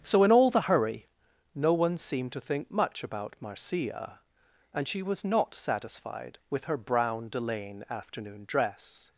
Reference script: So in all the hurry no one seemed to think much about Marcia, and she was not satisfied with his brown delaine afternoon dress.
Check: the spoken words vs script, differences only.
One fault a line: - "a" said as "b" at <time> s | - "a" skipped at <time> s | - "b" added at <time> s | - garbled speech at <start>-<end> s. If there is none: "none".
- "his" said as "her" at 6.6 s